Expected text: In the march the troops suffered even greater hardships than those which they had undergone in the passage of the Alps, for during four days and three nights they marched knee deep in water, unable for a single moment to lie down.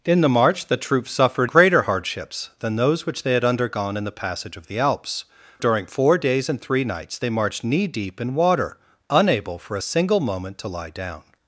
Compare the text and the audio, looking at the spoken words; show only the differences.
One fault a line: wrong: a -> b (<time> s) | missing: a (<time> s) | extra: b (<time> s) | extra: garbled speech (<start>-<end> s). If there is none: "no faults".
missing: even (1.5 s)
missing: for (5.2 s)